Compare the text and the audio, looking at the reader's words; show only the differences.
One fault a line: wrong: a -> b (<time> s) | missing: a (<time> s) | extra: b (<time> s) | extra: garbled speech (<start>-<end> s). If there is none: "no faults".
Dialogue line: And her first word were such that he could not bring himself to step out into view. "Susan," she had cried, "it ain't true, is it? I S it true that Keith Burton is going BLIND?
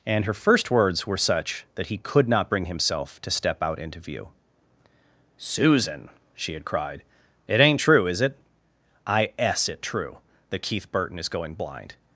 wrong: word -> words (0.7 s)